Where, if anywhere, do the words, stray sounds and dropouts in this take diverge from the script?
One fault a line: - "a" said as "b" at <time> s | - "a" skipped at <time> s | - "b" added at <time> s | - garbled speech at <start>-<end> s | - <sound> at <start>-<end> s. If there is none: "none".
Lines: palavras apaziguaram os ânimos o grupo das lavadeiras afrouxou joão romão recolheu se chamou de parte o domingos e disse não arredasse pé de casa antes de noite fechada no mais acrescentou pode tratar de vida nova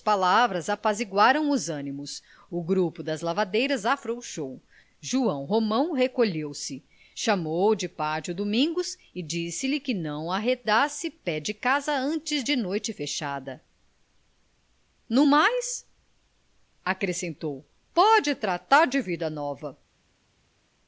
- "lhe que" added at 9.7 s